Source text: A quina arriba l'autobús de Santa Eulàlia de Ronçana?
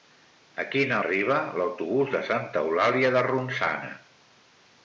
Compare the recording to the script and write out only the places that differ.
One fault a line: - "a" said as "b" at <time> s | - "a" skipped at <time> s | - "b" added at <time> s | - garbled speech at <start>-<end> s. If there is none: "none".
none